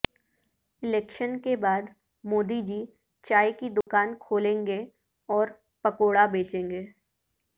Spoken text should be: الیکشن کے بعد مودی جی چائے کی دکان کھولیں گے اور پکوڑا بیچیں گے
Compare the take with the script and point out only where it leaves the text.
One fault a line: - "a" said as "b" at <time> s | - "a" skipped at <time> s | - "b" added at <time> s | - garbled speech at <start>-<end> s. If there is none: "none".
none